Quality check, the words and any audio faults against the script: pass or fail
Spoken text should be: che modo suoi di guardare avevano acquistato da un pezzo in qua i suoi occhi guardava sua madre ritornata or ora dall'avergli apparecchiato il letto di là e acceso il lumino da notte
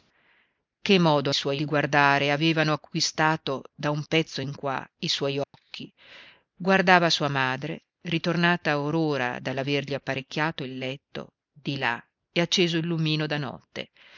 fail